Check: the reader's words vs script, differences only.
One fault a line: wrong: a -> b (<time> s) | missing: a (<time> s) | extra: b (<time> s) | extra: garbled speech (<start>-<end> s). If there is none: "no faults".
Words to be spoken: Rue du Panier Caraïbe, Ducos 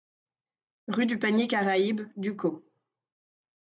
no faults